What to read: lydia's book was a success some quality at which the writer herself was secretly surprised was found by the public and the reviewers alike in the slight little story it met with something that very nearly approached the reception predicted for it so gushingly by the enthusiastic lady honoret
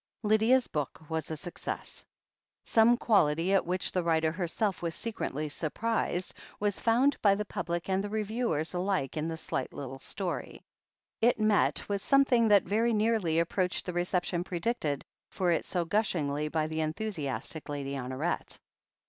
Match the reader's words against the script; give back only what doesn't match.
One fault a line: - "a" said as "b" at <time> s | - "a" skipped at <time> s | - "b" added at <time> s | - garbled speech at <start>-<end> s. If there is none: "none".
none